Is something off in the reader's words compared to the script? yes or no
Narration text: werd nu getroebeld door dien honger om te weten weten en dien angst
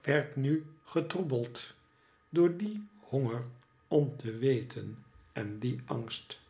yes